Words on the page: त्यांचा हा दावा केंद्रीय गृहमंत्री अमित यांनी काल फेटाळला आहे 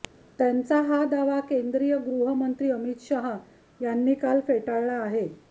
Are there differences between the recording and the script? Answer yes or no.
yes